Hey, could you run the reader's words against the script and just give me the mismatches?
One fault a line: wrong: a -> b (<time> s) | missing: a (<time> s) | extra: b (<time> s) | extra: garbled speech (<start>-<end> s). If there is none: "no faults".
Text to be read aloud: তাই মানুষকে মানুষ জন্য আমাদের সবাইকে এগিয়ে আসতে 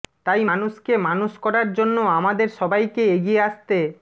extra: করার (1.4 s)